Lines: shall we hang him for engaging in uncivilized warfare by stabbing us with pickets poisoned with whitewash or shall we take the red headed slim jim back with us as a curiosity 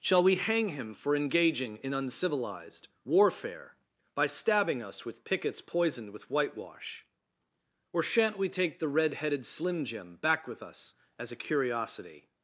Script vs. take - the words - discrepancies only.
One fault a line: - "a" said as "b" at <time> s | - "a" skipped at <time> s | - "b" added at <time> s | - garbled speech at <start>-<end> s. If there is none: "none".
- "shall" said as "shan't" at 8.0 s